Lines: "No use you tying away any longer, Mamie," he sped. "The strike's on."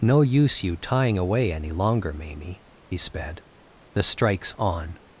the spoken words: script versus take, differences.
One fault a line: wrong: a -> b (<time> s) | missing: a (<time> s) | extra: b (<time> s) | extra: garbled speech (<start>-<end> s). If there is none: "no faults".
no faults